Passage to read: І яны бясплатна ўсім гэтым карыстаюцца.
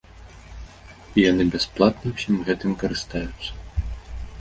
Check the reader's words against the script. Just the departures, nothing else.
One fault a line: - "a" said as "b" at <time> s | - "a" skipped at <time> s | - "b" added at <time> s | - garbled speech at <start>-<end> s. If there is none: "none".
none